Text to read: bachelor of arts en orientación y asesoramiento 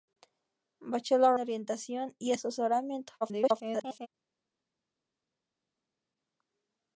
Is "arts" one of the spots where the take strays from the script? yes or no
yes